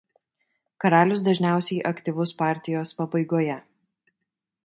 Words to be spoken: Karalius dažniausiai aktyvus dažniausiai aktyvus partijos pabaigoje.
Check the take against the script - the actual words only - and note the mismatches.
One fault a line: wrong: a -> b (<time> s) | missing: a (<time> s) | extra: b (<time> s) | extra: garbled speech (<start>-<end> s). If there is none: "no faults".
missing: dažniausiai aktyvus (2.3 s)